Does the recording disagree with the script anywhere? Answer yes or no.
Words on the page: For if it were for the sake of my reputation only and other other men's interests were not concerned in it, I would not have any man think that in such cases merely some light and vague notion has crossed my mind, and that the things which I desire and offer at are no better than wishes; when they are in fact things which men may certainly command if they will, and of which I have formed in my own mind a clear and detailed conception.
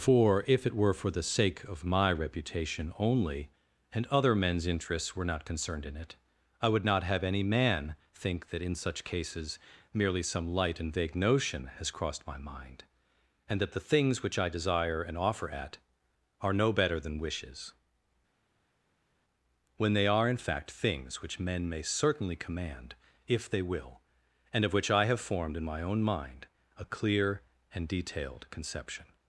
yes